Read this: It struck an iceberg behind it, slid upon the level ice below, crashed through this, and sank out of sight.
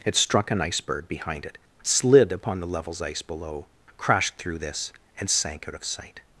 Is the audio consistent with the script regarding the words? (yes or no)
no